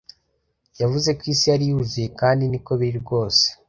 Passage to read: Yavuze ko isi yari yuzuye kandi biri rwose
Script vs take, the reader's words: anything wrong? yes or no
yes